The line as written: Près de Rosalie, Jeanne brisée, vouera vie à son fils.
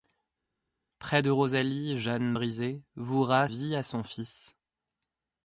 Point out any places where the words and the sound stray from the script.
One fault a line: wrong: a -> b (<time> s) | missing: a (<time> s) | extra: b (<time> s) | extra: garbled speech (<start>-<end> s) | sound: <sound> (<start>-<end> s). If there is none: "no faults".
no faults